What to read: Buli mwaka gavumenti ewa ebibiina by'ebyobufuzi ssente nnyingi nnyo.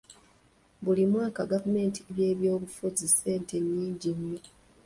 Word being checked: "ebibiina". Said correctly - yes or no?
no